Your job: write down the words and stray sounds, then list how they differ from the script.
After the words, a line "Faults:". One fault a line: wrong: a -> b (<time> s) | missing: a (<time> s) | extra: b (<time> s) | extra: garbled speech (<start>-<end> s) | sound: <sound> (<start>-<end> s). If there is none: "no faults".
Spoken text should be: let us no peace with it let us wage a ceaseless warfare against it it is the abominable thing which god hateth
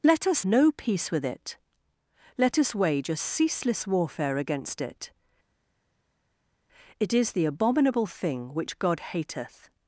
let us no peace with it let us wage a ceaseless warfare against it it is the abominable thing which god hateth
Faults:
no faults